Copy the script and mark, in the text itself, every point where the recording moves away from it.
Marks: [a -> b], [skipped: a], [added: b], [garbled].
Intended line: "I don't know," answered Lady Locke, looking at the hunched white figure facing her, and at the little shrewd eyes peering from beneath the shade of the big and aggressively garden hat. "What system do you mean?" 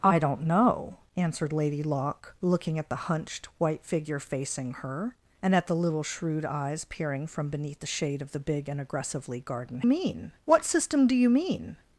"I don't know," answered Lady Locke, looking at the hunched white figure facing her, and at the little shrewd eyes peering from beneath the shade of the big and aggressively garden [hat. -> mean] "What system do you mean?"